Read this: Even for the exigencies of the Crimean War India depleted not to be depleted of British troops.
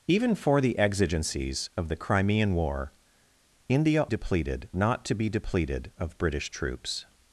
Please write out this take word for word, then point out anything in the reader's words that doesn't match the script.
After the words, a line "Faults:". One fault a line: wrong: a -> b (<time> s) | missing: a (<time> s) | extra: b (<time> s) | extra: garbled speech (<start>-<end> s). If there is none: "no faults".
Even for the exigencies of the Crimean War India depleted not to be depleted of British troops.
Faults:
no faults